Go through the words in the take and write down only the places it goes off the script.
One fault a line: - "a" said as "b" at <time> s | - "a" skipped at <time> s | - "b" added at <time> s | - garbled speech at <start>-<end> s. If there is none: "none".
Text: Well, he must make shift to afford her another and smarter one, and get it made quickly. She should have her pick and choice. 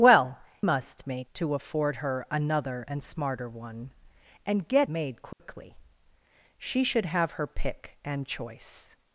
- "he" skipped at 0.4 s
- "shift" skipped at 1.3 s
- "it" skipped at 4.9 s